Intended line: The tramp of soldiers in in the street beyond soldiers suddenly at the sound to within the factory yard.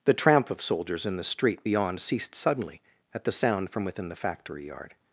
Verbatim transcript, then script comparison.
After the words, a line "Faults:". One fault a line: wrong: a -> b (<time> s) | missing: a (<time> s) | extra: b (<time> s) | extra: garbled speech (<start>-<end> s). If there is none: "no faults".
The tramp of soldiers in the street beyond ceased suddenly at the sound from within the factory yard.
Faults:
missing: in (1.2 s)
wrong: soldiers -> ceased (2.0 s)
wrong: to -> from (3.7 s)